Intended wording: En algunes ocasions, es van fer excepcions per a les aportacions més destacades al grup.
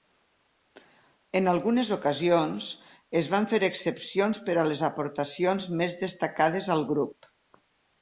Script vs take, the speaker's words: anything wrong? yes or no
no